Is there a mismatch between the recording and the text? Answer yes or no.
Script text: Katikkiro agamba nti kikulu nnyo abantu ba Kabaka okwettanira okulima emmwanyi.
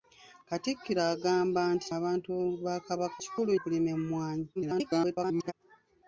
yes